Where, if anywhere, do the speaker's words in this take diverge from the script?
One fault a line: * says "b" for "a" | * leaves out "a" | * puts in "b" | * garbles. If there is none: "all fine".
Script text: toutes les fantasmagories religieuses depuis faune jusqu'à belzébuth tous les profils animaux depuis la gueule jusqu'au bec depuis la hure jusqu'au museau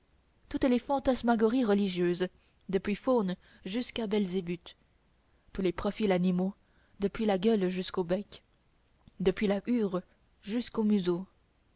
all fine